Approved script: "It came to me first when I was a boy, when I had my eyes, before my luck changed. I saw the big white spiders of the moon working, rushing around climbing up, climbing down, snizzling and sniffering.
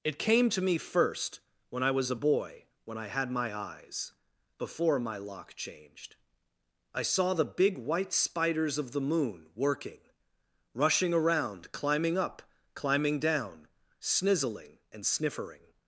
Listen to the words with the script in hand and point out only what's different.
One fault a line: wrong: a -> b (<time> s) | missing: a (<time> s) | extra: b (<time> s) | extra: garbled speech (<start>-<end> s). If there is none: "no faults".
wrong: luck -> lock (5.2 s)